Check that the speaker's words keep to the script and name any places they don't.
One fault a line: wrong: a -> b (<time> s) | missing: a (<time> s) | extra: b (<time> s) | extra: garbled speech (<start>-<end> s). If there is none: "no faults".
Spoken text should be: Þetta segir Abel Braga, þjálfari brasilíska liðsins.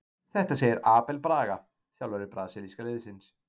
no faults